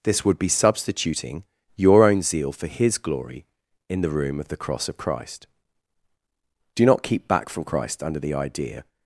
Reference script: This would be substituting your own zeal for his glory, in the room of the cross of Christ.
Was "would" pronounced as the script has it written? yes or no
yes